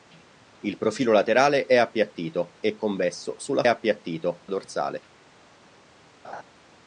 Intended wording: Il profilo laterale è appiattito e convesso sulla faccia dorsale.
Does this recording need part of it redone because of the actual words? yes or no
yes